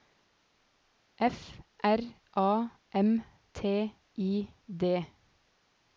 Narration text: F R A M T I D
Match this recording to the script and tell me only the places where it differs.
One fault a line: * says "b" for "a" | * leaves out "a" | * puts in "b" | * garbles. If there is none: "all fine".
all fine